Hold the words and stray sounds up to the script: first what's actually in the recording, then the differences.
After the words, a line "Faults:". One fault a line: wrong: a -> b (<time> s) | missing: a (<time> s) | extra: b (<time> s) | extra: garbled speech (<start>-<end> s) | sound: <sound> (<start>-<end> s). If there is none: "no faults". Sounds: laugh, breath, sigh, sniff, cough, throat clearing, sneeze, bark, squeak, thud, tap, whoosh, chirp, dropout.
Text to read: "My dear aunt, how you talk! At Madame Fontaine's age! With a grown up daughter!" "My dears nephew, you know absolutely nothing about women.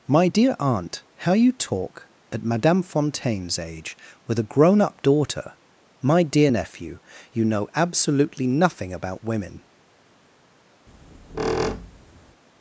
"My dear aunt, how you talk! At Madame Fontaine's age! With a grown up daughter!" "My dear nephew, you know absolutely nothing about women.
Faults:
wrong: dears -> dear (6.2 s)
sound: squeak (10.9-12.4 s)